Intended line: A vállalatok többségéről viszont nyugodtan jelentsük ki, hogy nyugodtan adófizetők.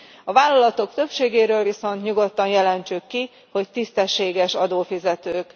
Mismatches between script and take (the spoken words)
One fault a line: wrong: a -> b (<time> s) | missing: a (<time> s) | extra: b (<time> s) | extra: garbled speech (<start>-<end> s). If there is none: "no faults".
wrong: nyugodtan -> tisztességes (3.7 s)